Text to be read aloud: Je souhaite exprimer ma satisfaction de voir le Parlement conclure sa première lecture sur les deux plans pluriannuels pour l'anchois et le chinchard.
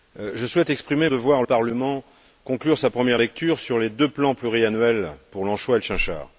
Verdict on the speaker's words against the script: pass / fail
fail